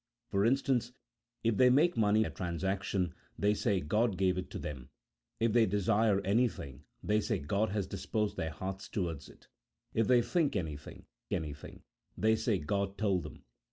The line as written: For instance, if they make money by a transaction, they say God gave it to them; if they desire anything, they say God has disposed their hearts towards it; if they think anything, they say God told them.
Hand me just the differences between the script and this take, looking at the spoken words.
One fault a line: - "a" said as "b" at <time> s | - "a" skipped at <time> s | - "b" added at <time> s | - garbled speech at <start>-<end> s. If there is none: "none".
- "by" skipped at 2.2 s
- "anything" added at 11.3 s